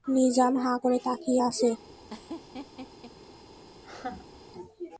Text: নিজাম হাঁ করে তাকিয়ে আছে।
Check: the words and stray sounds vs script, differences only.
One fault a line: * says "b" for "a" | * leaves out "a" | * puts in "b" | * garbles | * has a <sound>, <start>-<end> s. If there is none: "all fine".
* has a laugh, 2.1-3.1 s
* has a laugh, 3.8-4.4 s